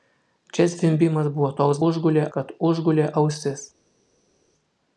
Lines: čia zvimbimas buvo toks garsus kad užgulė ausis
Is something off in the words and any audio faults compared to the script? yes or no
yes